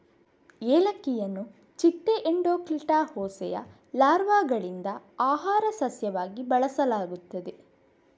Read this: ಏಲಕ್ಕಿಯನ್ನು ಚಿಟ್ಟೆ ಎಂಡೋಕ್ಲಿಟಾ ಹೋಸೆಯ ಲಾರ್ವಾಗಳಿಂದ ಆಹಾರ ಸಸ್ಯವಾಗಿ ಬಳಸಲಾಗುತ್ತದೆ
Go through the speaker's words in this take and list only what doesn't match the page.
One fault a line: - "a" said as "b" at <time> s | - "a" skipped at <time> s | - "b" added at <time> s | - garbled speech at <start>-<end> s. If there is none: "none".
none